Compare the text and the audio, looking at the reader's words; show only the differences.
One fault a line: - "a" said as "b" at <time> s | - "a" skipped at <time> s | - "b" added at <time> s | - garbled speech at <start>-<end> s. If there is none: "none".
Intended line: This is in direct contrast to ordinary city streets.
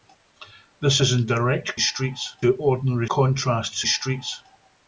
- "contrast" said as "streets" at 1.8 s
- "city" said as "contrast" at 3.1 s